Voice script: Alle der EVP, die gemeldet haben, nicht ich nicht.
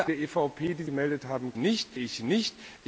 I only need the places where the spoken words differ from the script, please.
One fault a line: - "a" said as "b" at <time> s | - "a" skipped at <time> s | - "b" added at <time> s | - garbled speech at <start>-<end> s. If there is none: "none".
none